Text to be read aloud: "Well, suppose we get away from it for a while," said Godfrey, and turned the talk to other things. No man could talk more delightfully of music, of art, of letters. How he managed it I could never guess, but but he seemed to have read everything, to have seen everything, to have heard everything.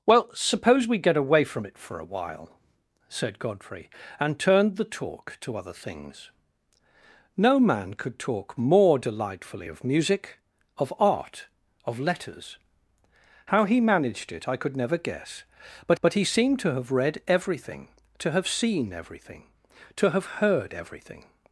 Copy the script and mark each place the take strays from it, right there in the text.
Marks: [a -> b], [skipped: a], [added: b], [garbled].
"Well, suppose we get away from it for a while," said Godfrey, and turned the talk to other things. No man could talk more delightfully of music, of art, of letters. How he managed it I could never guess, but but he seemed to have read everything, to have seen everything, to have heard everything.